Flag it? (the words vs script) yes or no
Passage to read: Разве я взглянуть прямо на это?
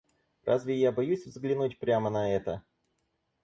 yes